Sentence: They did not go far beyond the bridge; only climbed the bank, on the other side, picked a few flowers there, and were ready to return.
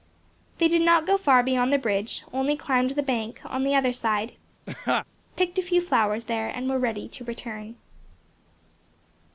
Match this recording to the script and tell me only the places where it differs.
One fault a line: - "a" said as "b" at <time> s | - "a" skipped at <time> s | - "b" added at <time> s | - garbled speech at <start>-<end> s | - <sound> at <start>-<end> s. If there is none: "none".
- laugh at 4.7-5.1 s